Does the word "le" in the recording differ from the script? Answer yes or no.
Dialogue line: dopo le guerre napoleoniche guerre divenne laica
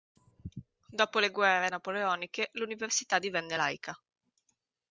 no